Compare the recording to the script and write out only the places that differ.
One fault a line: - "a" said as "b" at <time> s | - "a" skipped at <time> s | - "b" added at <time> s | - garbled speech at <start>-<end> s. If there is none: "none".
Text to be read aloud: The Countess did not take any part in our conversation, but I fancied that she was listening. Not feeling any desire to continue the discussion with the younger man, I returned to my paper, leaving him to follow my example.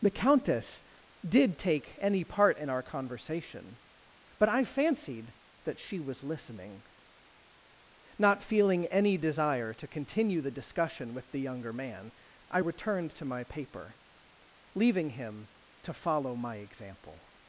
- "not" skipped at 1.6 s